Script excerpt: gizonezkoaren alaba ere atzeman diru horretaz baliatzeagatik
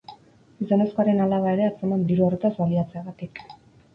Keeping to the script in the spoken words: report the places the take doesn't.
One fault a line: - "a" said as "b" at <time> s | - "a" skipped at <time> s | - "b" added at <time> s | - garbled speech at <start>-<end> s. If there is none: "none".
none